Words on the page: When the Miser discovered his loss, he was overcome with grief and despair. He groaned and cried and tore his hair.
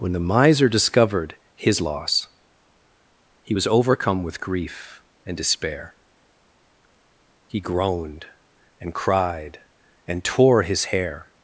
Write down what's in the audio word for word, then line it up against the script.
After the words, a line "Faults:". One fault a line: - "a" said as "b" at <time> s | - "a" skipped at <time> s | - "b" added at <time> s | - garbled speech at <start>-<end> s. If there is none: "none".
When the Miser discovered his loss, he was overcome with grief and despair. He groaned and cried and tore his hair.
Faults:
none